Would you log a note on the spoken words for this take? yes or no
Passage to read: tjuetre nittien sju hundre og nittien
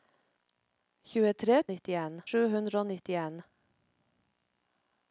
no